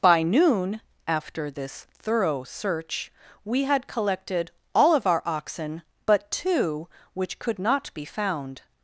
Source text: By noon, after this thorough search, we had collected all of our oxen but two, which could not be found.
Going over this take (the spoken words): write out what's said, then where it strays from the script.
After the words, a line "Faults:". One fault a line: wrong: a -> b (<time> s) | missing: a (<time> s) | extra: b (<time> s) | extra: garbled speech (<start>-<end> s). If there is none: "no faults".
By noon, after this thorough search, we had collected all of our oxen but two, which could not be found.
Faults:
no faults